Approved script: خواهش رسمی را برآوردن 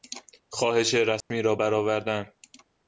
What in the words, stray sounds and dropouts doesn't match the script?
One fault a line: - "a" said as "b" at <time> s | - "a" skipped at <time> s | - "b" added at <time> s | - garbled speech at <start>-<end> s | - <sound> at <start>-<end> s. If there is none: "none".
- dropout at 1.2-1.3 s